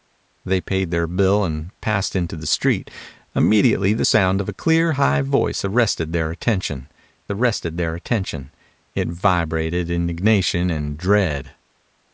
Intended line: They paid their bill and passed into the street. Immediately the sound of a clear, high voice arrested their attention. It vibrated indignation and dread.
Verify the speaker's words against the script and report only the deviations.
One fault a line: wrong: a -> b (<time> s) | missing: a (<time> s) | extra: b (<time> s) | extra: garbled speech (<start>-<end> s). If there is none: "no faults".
extra: arrested their attention (7.3 s)